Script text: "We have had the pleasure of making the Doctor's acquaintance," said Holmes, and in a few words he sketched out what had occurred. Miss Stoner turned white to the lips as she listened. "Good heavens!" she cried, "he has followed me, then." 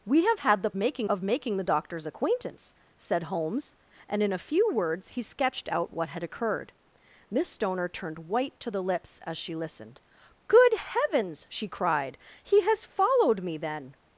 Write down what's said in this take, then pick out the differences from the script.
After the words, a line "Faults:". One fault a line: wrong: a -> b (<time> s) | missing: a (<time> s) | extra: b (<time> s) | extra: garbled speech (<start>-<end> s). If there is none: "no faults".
"We have had the making of making the Doctor's acquaintance," said Holmes, and in a few words he sketched out what had occurred. Miss Stoner turned white to the lips as she listened. "Good heavens!" she cried, "he has followed me, then."
Faults:
wrong: pleasure -> making (0.8 s)